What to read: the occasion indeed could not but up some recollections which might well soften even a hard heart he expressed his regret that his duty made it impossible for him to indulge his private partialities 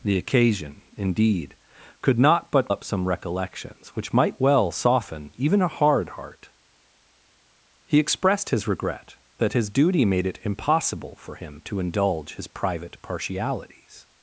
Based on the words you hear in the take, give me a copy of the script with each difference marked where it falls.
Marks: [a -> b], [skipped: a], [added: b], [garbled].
the occasion indeed could not but up some recollections which might well soften even a hard heart he expressed his regret that his duty made it impossible for him to indulge his private partialities